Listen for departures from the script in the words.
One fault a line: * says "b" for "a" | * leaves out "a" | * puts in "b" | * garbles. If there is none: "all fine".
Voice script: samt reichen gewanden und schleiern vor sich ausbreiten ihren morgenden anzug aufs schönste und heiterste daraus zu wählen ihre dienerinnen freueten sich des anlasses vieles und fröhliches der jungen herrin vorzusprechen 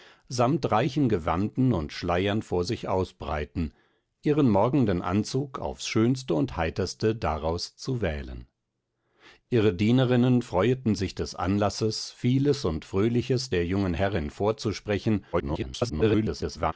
* garbles